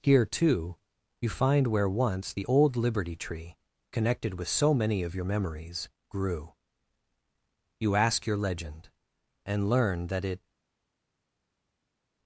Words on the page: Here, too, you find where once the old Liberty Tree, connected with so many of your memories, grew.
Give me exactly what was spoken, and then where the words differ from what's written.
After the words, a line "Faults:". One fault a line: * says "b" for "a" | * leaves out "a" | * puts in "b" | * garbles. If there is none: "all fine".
Here, too, you find where once the old Liberty Tree, connected with so many of your memories, grew. You ask your legend, and learn that it
Faults:
* puts in "You ask your legend and learn that it"